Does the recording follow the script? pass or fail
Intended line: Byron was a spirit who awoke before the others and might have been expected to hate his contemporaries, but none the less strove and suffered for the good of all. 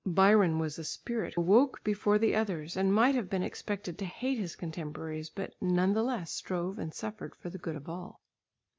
fail